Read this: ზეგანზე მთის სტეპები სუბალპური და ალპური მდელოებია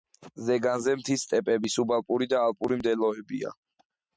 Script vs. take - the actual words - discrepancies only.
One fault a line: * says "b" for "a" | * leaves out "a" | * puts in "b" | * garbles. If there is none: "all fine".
all fine